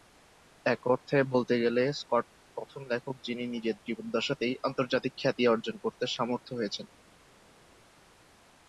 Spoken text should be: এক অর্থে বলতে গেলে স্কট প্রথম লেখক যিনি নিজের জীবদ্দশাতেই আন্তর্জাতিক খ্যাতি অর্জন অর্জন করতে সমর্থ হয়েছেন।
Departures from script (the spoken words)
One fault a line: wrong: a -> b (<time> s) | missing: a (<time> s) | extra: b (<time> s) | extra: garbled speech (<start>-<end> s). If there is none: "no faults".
missing: অর্জন (5.7 s)